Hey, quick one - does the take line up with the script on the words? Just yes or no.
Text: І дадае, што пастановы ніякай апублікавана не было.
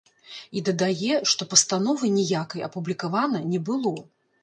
yes